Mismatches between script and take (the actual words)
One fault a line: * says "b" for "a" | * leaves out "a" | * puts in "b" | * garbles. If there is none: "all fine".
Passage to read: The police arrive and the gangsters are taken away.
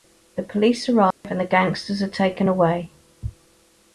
all fine